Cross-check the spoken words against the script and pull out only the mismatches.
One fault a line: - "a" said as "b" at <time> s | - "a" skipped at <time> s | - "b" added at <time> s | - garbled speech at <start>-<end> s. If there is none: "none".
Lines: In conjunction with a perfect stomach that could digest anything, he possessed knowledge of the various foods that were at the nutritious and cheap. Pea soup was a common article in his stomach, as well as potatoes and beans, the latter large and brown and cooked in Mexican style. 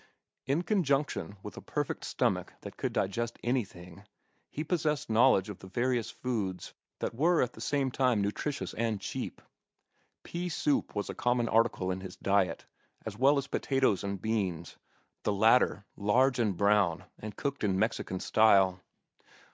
- "same time" added at 7.6 s
- "stomach" said as "diet" at 12.2 s